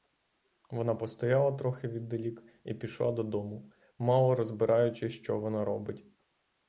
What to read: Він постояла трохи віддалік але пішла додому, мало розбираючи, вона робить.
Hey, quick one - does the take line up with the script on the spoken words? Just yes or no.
no